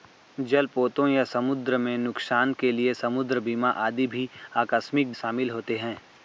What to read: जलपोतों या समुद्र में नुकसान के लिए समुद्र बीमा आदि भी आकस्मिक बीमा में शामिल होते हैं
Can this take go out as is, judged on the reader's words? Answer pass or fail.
fail